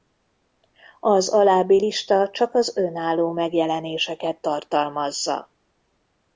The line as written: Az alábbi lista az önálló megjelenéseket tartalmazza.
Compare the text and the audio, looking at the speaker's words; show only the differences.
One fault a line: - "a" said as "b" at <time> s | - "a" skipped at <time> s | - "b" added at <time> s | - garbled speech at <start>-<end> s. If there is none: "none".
- "csak" added at 2.3 s